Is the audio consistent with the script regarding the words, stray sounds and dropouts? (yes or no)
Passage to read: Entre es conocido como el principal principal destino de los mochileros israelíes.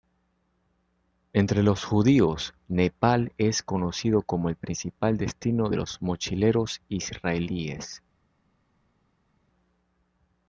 no